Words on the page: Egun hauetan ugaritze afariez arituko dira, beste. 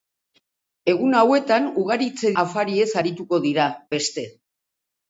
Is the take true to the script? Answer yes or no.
yes